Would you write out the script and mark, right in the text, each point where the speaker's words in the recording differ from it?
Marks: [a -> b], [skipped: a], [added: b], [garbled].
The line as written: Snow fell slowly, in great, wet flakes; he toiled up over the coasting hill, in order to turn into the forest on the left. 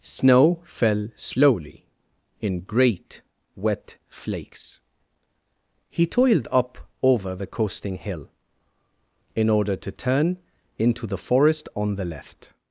Snow fell slowly, in great, wet flakes; he toiled up over the coasting hill, in order to turn into the forest on the left.